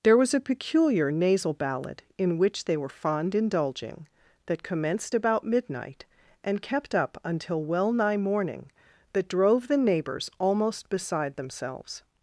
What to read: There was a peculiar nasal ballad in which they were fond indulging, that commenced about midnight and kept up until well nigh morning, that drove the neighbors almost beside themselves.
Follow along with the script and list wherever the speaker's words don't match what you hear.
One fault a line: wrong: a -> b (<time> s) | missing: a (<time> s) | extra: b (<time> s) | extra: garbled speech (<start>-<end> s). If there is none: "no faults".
no faults